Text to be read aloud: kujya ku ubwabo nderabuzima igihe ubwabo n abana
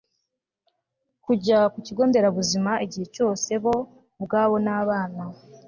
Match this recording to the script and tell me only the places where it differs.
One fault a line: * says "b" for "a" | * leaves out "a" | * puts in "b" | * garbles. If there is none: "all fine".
* says "kigo" for "ubwabo"
* puts in "cyose bo"